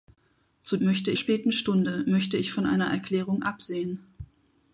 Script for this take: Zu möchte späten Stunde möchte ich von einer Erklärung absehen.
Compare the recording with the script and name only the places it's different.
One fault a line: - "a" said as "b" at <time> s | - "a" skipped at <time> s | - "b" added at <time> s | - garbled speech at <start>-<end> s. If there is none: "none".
none